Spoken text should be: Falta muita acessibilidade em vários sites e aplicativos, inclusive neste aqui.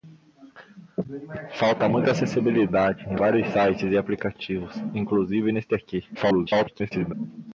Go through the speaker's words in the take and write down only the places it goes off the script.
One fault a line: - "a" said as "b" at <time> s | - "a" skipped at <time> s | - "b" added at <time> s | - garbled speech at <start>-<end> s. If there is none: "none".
- garbled speech at 6.1-7.1 s